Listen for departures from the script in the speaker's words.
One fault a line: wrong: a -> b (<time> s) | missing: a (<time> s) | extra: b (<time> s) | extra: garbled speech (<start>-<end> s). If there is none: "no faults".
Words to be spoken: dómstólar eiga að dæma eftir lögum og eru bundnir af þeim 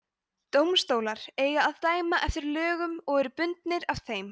no faults